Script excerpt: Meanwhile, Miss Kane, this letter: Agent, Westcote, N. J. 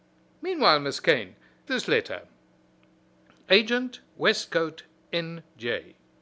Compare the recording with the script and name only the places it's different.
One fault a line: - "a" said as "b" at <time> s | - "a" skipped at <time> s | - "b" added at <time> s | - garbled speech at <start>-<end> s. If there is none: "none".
none